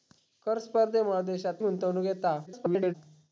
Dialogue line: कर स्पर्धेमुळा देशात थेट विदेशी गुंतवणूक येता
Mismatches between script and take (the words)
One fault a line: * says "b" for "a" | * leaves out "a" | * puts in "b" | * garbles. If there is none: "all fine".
* leaves out "थेट विदेशी"
* garbles